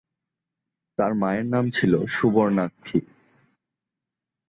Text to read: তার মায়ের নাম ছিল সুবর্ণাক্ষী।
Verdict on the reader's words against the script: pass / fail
pass